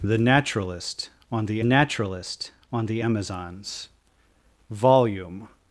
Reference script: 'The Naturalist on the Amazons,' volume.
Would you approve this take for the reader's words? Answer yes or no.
no